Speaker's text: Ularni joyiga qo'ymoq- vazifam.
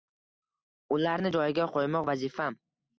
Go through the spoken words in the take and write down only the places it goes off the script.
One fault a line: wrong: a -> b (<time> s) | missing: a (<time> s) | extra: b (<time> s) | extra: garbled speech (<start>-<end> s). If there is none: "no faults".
no faults